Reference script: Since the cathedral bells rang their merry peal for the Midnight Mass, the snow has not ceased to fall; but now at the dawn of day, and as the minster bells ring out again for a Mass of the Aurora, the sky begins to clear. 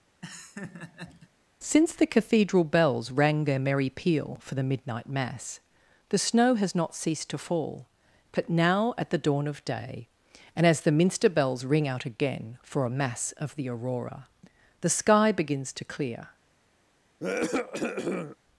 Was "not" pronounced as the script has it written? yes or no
yes